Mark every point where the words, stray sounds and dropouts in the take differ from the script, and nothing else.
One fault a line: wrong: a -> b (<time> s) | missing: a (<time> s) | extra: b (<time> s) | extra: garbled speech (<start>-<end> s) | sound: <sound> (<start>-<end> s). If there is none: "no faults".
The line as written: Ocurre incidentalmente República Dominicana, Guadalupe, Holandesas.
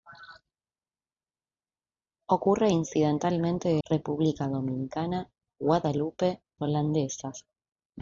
no faults